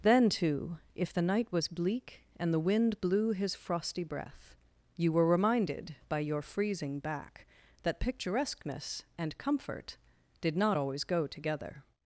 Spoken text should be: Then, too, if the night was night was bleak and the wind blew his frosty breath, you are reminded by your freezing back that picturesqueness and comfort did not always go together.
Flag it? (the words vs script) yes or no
yes